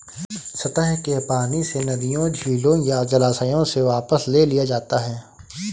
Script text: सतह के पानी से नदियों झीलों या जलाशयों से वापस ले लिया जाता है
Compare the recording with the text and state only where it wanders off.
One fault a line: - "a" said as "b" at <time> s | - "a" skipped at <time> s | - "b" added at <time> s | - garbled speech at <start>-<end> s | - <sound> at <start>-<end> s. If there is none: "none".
none